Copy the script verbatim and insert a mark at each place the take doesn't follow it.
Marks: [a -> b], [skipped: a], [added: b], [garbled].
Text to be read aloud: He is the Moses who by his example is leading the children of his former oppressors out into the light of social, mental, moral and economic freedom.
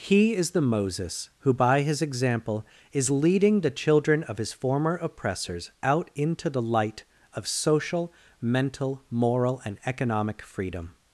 He is the Moses who by his example is leading the children of his former oppressors out into the light of social, mental, moral and economic freedom.